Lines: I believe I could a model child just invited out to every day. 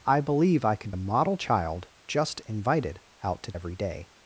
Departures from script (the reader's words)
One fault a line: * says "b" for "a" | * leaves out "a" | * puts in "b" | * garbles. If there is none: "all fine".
all fine